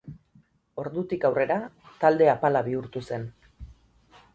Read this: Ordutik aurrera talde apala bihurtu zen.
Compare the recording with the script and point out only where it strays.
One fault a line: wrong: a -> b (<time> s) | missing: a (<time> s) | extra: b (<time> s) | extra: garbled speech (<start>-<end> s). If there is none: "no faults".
no faults